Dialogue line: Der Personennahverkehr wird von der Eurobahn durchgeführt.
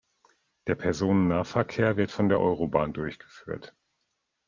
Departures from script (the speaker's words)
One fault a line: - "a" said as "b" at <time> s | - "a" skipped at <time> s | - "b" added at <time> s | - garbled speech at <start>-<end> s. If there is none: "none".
none